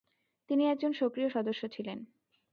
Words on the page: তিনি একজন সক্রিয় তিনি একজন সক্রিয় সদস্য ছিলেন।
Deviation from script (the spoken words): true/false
true